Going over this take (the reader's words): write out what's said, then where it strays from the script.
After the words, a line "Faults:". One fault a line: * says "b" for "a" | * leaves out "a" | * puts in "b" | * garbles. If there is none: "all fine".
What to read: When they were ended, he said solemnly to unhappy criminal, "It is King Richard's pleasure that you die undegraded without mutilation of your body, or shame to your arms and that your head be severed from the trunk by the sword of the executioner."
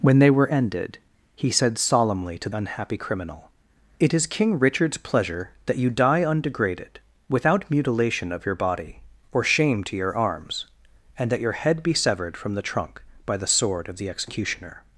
When they were ended, he said solemnly to unhappy criminal, "It is King Richard's pleasure that you die undegraded without mutilation of your body, or shame to your arms and that your head be severed from the trunk by the sword of the executioner."
Faults:
all fine